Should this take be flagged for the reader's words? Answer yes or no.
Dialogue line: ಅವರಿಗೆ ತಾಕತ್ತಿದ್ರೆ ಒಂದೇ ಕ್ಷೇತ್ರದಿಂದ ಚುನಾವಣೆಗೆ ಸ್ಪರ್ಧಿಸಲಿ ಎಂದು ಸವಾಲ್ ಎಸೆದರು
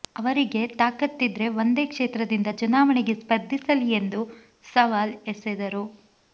no